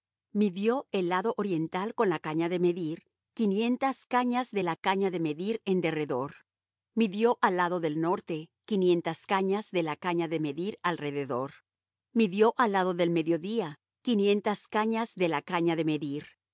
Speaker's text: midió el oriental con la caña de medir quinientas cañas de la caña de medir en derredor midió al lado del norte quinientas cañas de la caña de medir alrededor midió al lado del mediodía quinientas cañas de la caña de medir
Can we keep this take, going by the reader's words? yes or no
no